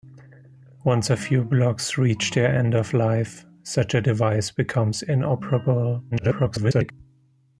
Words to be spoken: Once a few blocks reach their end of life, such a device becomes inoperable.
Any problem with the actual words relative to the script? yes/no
yes